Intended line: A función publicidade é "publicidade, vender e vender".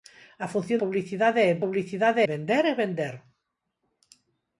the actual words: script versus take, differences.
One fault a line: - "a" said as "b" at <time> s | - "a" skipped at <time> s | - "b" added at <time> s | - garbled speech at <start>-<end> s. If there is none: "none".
none